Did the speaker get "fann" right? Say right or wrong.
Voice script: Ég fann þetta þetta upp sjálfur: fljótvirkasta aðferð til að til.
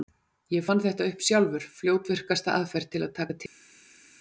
right